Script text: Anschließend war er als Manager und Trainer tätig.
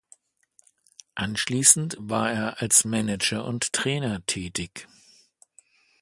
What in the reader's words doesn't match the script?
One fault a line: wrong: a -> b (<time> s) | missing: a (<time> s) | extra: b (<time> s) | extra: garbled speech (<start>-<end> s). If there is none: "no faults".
no faults